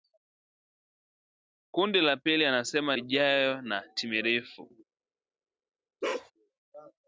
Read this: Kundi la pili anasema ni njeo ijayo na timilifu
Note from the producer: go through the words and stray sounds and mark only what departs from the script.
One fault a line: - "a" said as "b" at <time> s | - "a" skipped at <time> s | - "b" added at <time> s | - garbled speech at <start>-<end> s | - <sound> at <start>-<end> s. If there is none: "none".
- "ni njeo" skipped at 3.0 s
- bark at 6.0-6.3 s